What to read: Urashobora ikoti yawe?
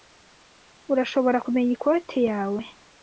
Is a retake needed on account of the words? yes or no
yes